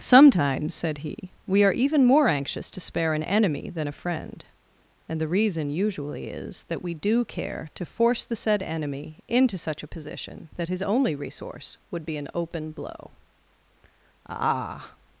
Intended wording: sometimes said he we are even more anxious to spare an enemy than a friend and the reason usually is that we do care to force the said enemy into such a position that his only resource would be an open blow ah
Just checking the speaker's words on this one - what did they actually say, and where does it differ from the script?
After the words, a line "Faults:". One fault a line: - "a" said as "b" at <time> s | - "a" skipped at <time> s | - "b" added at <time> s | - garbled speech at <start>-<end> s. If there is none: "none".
sometimes said he we are even more anxious to spare an enemy than a friend and the reason usually is that we do care to force the said enemy into such a position that his only resource would be an open blow ah
Faults:
none